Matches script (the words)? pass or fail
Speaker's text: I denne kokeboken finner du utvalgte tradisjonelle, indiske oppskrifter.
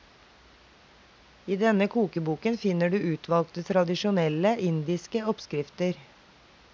pass